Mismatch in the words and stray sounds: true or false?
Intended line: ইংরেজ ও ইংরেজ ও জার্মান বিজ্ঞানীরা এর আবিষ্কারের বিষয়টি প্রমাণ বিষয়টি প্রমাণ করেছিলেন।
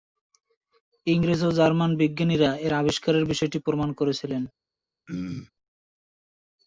true